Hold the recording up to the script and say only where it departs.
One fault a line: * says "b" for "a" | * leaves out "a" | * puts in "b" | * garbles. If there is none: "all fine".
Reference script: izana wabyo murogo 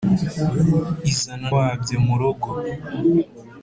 all fine